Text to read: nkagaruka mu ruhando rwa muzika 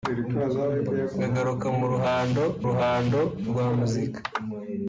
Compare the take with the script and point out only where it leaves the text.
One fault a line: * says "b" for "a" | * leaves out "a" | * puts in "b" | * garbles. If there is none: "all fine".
* puts in "ruhando"